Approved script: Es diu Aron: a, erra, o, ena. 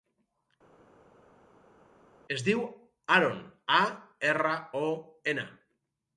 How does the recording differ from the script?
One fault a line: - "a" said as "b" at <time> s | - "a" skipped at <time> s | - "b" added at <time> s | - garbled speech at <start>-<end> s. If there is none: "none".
none